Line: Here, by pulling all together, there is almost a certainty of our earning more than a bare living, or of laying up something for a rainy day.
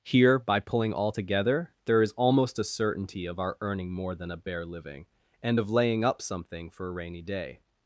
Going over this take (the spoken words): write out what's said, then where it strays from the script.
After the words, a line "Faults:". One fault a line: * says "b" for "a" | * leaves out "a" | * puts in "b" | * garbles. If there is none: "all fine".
Here, by pulling all together, there is almost a certainty of our earning more than a bare living, and of laying up something for a rainy day.
Faults:
* says "and" for "or"